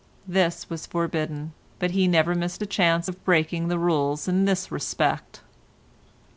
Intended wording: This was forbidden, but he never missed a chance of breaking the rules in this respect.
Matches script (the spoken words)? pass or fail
pass